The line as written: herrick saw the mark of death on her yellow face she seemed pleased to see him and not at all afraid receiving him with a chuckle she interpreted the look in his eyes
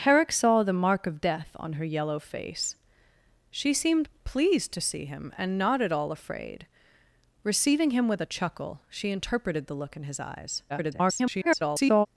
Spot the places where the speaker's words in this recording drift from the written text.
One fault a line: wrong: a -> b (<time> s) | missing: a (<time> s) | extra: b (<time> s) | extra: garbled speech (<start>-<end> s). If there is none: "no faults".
extra: garbled speech (10.7-12.1 s)